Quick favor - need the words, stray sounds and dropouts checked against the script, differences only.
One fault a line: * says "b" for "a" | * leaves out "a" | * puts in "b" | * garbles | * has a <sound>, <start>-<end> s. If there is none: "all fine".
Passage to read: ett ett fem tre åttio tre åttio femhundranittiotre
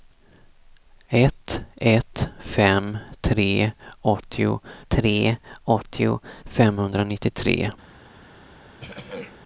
* has a throat clearing, 8.8-9.4 s